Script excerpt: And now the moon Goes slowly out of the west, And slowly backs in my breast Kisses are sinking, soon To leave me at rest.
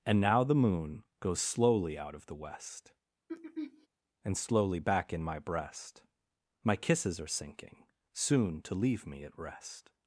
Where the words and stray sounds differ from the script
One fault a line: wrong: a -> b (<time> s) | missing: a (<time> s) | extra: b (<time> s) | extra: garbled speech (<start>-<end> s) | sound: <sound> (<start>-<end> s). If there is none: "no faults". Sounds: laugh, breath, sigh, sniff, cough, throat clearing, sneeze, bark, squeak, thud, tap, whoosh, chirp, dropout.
sound: throat clearing (3.3-3.9 s)
wrong: backs -> back (4.8 s)
extra: My (6.6 s)